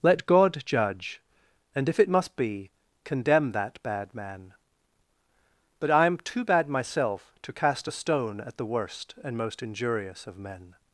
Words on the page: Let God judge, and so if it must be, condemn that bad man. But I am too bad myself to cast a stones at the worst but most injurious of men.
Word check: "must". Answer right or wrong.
right